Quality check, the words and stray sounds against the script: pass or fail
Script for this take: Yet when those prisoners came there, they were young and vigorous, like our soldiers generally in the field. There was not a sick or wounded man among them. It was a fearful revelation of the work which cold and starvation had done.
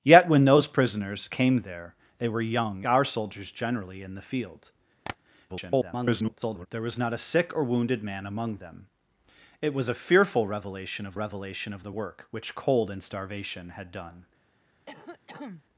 fail